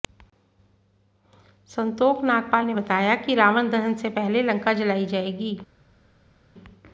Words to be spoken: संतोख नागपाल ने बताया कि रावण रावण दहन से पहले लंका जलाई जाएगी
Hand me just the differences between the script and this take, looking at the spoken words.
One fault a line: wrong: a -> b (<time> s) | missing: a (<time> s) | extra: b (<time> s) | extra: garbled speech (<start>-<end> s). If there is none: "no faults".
missing: रावण (3.7 s)